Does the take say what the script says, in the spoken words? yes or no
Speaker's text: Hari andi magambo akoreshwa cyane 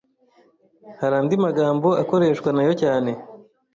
no